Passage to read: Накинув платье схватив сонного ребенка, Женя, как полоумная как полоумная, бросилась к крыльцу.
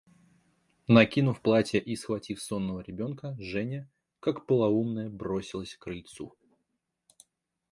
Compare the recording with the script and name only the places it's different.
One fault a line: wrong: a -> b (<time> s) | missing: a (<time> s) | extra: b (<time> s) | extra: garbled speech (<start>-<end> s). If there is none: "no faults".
extra: и (1.8 s)
missing: как полоумная (5.1 s)